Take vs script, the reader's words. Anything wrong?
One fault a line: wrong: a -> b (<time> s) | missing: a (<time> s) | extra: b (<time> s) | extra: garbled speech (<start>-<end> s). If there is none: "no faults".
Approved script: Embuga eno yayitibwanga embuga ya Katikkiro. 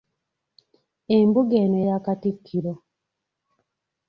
missing: yayitibwanga embuga (1.8 s)